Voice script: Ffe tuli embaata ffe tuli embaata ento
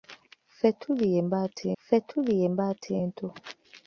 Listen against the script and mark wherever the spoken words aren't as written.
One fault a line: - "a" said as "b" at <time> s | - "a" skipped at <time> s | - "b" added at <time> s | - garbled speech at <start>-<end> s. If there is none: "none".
none